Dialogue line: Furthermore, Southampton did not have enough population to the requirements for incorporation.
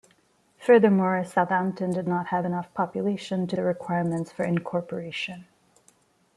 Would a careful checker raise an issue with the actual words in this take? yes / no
no